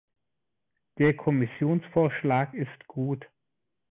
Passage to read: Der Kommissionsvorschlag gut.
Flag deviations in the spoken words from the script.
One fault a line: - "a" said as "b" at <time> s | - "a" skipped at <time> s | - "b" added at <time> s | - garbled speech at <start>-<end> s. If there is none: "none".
- "ist" added at 2.5 s